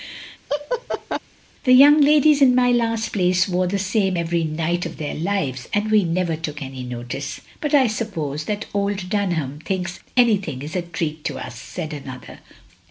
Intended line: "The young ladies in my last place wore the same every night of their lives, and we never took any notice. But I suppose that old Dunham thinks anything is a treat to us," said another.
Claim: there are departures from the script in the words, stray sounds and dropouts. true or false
true